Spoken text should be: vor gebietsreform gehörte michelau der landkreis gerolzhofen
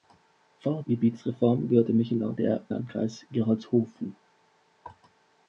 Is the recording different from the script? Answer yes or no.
no